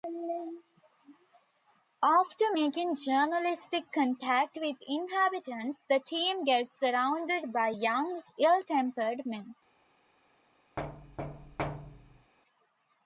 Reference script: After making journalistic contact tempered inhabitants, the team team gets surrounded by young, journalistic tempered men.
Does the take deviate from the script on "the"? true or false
false